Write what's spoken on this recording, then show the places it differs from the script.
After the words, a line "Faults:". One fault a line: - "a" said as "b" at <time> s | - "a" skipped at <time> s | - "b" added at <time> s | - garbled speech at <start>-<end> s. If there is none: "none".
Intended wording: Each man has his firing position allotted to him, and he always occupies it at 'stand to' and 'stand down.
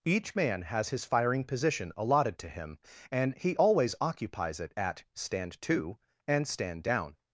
Each man has his firing position allotted to him, and he always occupies it at 'stand to' and 'stand down.
Faults:
none